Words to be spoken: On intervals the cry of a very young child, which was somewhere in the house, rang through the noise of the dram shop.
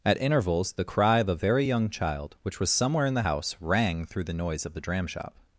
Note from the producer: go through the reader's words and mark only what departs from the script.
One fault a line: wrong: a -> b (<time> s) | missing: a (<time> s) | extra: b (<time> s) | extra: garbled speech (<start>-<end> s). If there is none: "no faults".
wrong: On -> At (0.0 s)